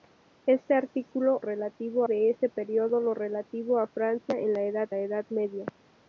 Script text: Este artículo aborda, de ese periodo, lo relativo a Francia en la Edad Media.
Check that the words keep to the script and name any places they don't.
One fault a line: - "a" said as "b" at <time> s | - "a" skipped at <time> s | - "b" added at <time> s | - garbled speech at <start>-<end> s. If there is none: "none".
- "aborda" said as "relativo" at 1.4 s
- "la Edad" added at 4.9 s